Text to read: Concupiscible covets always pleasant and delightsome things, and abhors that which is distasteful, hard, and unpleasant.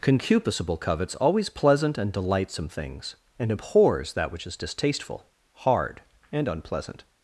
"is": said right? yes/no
yes